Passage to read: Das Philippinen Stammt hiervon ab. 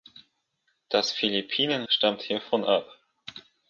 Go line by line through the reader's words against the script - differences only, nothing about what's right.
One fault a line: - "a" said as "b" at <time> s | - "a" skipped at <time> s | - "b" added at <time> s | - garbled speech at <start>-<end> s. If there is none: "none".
none